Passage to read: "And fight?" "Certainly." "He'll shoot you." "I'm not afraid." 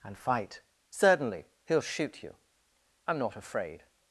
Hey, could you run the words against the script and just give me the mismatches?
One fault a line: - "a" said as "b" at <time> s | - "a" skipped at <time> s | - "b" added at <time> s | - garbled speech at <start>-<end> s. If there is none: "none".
none